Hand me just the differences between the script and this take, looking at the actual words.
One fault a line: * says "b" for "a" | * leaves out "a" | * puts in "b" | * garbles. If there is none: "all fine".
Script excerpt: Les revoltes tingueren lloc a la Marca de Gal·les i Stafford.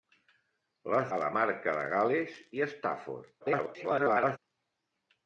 * leaves out "revoltes tingueren lloc"
* garbles